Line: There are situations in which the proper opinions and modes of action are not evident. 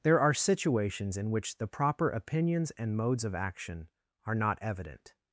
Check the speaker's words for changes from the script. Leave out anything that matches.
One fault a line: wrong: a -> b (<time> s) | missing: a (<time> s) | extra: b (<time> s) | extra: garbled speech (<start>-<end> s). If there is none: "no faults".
no faults